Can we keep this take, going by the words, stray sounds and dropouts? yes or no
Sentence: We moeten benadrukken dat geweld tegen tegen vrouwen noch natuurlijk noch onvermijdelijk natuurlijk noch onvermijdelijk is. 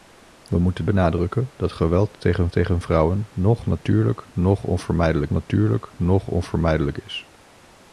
yes